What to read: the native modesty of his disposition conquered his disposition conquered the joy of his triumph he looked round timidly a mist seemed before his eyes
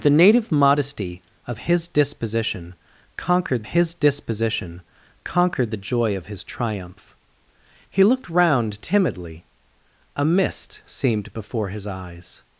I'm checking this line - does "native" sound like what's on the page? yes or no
yes